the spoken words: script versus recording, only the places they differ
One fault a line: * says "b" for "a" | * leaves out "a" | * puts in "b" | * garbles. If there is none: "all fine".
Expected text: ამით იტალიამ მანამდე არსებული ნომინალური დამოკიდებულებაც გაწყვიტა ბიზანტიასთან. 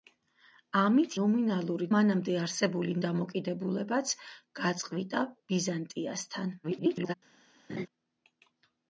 * says "ნომინალური" for "იტალიამ"
* leaves out "ნომინალური"
* garbles